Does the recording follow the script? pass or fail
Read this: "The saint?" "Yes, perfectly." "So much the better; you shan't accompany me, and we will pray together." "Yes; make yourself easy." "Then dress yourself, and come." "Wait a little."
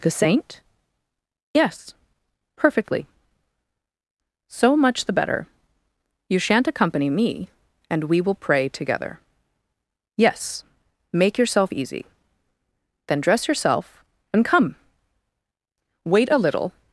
pass